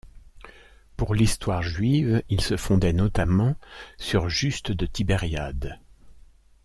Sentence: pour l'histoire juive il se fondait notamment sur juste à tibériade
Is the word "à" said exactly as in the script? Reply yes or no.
no